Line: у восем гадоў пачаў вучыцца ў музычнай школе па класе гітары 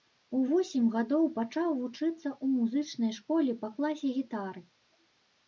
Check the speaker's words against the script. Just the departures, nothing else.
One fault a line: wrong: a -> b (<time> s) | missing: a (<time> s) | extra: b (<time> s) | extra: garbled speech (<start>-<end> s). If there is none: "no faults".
no faults